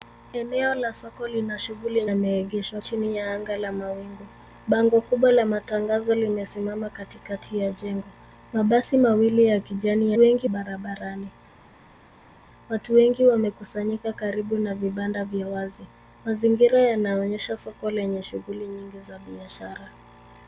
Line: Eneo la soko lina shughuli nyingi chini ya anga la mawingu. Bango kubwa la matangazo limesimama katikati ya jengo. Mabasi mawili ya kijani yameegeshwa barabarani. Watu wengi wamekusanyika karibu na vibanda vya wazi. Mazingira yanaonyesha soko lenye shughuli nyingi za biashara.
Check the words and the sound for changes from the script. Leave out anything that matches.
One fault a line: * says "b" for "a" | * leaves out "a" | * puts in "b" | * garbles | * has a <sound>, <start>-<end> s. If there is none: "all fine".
* says "yameegeshwa" for "nyingi"
* says "wengi" for "yameegeshwa"